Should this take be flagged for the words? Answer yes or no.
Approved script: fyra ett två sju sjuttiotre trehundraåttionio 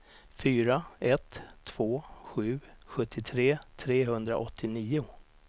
no